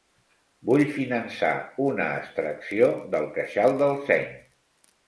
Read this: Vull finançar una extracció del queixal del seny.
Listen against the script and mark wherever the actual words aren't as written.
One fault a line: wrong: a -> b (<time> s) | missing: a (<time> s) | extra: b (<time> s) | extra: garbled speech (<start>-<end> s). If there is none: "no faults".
no faults